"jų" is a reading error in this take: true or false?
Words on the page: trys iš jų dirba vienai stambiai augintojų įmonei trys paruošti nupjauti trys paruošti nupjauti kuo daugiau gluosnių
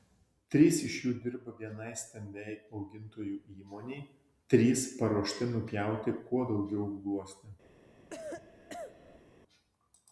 false